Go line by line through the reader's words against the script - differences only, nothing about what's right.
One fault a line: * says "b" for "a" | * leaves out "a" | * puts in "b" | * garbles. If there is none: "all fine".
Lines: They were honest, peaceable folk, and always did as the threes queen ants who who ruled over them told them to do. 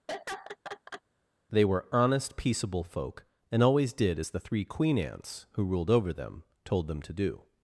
* says "three" for "threes"
* leaves out "who"